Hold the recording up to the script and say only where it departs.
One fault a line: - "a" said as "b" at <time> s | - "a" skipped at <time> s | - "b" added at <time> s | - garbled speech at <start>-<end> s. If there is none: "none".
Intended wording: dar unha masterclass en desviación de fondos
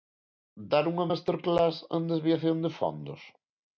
none